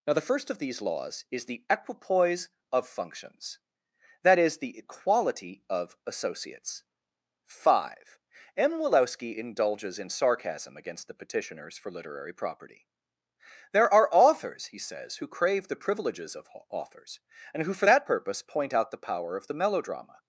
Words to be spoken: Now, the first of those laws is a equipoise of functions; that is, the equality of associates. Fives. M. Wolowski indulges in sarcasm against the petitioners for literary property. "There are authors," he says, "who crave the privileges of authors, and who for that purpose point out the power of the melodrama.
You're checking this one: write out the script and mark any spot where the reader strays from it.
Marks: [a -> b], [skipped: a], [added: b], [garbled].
Now, the first of [those -> these] laws is [a -> the] equipoise of functions; that is, the equality of associates. [Fives. -> Five] M. Wolowski indulges in sarcasm against the petitioners for literary property. "There are authors," he says, "who crave the privileges of authors, and who for that purpose point out the power of the melodrama.